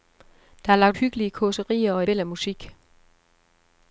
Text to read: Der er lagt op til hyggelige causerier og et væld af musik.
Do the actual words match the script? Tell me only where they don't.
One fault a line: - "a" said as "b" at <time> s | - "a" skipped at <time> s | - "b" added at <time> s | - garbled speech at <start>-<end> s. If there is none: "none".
- "op til" skipped at 1.0 s
- "et" skipped at 2.0 s